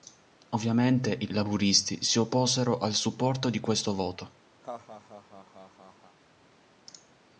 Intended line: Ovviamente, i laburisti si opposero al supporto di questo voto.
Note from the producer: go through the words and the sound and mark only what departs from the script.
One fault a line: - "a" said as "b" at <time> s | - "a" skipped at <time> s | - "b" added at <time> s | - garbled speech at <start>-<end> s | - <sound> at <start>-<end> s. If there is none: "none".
- laugh at 4.6-6.2 s